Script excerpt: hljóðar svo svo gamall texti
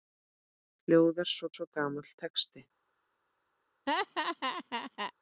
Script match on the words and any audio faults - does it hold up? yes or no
no